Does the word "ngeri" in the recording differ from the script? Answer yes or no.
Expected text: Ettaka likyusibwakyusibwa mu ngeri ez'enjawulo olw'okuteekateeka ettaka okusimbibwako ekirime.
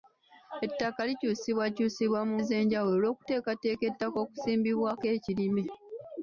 yes